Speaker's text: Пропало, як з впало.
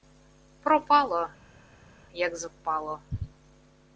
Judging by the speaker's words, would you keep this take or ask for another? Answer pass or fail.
pass